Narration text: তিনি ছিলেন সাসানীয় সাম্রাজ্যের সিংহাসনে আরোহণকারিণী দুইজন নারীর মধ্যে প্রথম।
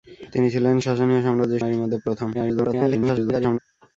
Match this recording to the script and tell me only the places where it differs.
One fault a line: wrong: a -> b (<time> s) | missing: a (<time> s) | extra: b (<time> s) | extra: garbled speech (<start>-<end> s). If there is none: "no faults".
missing: সিংহাসনে আরোহণকারিণী দুইজন (1.6 s)
extra: garbled speech (2.3-3.6 s)